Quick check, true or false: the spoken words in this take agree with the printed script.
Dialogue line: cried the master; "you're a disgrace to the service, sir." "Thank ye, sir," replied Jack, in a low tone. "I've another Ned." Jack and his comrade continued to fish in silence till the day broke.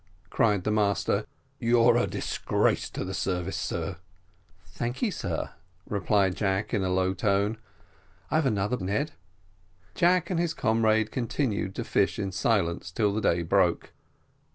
true